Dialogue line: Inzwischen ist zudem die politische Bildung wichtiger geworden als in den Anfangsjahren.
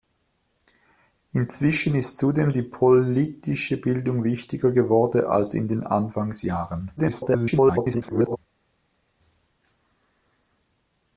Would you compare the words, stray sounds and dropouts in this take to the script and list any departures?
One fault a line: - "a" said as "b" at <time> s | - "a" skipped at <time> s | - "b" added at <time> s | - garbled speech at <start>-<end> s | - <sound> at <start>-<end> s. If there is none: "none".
- garbled speech at 7.0-8.4 s